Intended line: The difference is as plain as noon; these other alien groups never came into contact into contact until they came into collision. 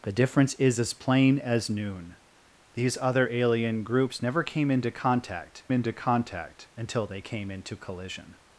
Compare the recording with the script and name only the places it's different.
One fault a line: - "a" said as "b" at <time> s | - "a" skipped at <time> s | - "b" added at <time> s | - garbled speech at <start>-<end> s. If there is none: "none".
none